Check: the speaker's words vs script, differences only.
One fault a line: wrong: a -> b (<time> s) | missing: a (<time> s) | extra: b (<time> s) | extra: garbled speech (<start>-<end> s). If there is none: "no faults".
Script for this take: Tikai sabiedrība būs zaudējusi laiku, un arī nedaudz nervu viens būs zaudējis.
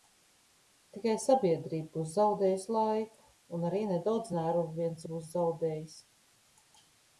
no faults